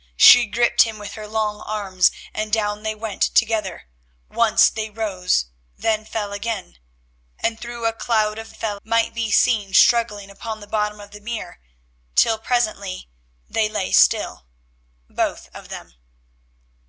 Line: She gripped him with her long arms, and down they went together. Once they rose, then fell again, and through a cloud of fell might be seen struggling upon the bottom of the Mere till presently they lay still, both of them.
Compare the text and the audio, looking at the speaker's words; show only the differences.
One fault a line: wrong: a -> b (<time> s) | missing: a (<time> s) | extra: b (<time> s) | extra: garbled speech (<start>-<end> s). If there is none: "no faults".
no faults